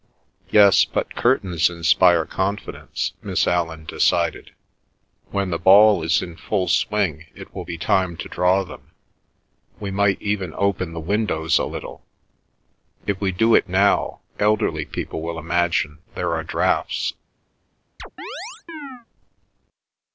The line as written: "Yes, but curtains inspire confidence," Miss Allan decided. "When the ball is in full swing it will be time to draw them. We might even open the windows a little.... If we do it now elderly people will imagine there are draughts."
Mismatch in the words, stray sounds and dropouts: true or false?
true